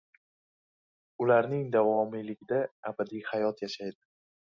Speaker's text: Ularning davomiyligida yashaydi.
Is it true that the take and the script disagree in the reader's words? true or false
true